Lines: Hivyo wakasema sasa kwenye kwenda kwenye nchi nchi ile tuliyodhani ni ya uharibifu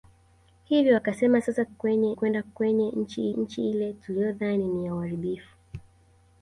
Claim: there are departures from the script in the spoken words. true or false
false